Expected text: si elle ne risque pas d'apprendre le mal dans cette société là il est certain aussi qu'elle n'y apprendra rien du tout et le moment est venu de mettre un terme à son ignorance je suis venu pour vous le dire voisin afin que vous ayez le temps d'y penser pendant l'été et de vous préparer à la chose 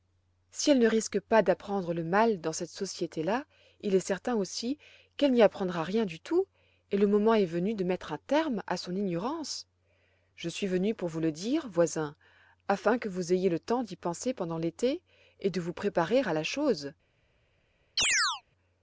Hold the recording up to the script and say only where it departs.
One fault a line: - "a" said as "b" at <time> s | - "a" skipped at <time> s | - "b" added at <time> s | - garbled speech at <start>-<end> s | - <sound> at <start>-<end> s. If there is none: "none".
- chirp at 18.0-18.4 s